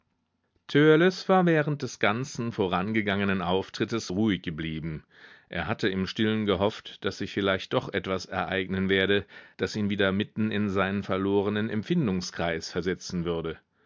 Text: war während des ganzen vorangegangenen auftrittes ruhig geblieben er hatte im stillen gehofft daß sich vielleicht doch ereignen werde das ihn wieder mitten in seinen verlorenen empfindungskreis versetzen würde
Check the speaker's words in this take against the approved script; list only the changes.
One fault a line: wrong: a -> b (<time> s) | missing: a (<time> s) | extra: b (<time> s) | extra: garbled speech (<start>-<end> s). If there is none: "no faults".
extra: etwas (7.9 s)